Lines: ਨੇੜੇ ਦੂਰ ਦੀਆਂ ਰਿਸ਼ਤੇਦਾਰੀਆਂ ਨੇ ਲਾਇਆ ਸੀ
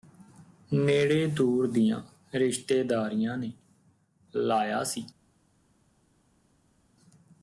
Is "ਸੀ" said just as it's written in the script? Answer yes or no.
yes